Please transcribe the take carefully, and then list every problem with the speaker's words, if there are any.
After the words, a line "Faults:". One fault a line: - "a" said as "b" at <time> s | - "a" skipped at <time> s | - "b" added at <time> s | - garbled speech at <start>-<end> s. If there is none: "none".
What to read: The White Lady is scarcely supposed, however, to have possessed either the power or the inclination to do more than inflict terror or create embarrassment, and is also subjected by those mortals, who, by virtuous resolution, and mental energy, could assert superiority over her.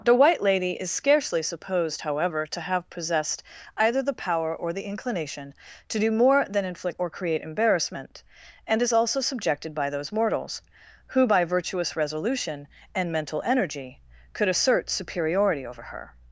The White Lady is scarcely supposed, however, to have possessed either the power or the inclination to do more than inflict or create embarrassment, and is also subjected by those mortals, who, by virtuous resolution, and mental energy, could assert superiority over her.
Faults:
- "terror" skipped at 7.0 s